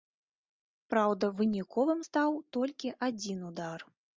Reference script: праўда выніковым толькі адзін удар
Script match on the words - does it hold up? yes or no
no